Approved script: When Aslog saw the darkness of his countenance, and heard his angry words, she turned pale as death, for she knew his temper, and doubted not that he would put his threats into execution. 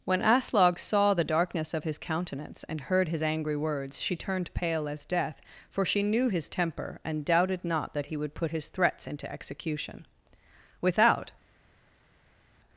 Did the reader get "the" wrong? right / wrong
right